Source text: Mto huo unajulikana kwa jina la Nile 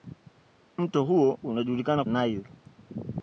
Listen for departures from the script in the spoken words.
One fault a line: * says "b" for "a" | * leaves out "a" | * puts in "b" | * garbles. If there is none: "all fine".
* leaves out "kwa jina la"